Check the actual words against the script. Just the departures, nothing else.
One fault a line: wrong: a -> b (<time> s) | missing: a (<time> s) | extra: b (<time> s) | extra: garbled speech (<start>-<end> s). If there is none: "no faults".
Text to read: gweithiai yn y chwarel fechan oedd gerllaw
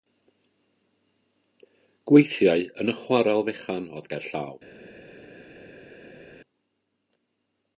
no faults